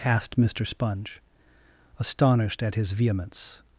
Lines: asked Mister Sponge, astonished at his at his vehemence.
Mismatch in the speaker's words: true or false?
true